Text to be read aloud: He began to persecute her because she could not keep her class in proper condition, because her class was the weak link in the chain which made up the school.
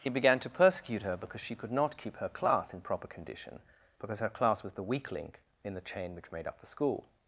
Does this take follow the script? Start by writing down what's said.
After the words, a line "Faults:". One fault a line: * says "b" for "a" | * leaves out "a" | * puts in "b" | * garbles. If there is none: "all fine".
He began to persecute her because she could not keep her class in proper condition, because her class was the weak link in the chain which made up the school.
Faults:
all fine